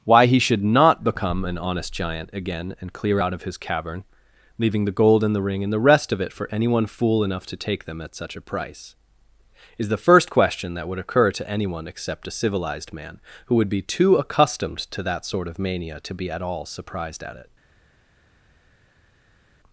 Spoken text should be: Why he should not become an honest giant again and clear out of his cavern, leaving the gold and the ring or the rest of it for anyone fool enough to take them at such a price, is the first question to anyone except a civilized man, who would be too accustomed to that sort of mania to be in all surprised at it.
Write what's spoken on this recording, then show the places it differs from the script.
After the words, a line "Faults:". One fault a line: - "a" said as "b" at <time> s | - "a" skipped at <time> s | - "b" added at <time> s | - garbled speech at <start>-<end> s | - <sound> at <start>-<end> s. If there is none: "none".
Why he should not become an honest giant again and clear out of his cavern, leaving the gold and the ring and the rest of it for anyone fool enough to take them at such a price, is the first question that would occur to anyone except a civilized man, who would be too accustomed to that sort of mania to be at all surprised at it.
Faults:
- "or" said as "and" at 5.6 s
- "that would occur" added at 10.7 s
- "in" said as "at" at 16.3 s